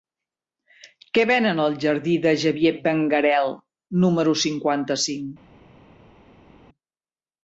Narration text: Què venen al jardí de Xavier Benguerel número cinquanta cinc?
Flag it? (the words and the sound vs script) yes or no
no